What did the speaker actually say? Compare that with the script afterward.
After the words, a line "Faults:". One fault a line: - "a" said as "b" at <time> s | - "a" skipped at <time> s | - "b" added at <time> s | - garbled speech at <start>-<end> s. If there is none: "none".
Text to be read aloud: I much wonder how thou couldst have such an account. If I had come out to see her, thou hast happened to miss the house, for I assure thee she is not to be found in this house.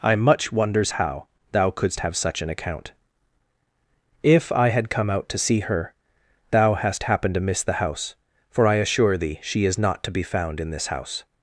I much wonders how thou couldst have such an account. If I had come out to see her, thou hast happened to miss the house, for I assure thee she is not to be found in this house.
Faults:
- "wonder" said as "wonders" at 0.5 s